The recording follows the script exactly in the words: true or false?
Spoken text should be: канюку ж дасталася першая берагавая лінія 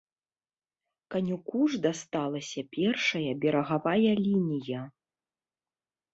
true